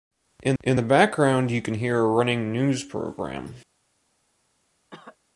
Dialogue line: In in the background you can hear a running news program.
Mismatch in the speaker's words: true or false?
false